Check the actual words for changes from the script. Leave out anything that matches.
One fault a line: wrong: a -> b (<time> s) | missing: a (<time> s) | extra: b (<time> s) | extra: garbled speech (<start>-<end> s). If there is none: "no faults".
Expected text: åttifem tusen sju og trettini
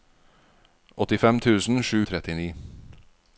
no faults